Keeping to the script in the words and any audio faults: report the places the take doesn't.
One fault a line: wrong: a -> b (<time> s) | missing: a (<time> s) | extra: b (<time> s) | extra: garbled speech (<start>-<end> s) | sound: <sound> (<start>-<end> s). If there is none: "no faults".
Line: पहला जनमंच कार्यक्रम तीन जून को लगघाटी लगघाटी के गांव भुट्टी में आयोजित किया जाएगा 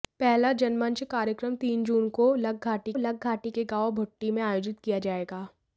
no faults